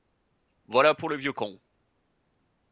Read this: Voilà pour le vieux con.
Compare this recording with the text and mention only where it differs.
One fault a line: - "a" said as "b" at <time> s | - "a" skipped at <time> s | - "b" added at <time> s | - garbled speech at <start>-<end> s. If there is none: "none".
none